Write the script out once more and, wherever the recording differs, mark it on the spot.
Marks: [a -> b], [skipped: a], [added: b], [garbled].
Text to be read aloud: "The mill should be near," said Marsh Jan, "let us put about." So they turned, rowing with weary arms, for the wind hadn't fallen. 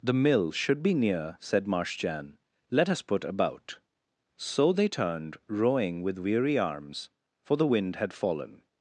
"The mill should be near," said Marsh Jan, "let us put about." So they turned, rowing with weary arms, for the wind [hadn't -> had] fallen.